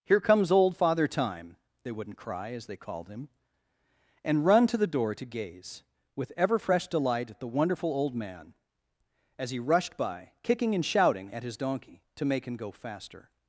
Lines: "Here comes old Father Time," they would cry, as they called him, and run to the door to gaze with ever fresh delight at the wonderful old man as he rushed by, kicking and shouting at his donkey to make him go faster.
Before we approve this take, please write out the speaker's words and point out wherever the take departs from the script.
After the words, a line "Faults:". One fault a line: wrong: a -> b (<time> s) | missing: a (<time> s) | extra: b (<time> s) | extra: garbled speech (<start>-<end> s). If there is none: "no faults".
"Here comes old Father Time," they wouldn't cry, as they called him, and run to the door to gaze with ever fresh delight at the wonderful old man as he rushed by, kicking and shouting at his donkey to make him go faster.
Faults:
wrong: would -> wouldn't (1.9 s)